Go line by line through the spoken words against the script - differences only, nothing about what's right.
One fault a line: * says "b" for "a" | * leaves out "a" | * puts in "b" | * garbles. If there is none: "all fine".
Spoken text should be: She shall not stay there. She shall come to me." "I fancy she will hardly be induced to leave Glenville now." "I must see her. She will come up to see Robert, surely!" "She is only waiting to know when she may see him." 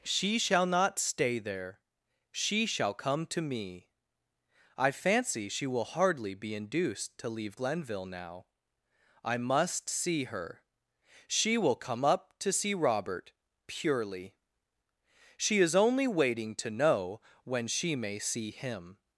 * says "purely" for "surely"